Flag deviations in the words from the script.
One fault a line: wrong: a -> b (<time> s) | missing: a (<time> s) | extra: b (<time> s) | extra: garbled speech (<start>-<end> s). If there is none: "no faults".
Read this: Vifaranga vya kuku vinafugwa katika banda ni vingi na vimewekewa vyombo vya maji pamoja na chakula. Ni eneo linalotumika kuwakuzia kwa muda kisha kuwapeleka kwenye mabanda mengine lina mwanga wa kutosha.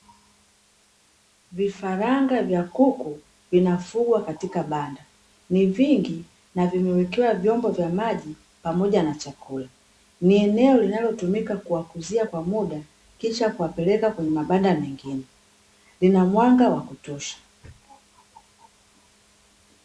no faults